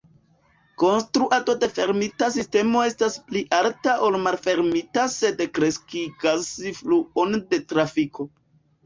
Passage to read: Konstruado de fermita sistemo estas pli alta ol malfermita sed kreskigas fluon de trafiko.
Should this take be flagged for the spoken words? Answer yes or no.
no